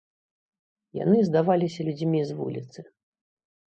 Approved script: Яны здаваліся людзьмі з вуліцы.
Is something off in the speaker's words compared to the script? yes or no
no